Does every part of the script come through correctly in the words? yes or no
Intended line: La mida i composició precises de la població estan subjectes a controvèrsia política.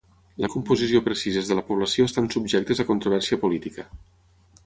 no